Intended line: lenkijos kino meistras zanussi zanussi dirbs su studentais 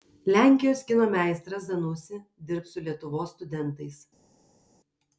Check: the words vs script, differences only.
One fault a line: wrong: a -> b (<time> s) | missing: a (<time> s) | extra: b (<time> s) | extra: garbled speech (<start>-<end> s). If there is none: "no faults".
missing: zanussi (2.2 s)
extra: lietuvos (2.9 s)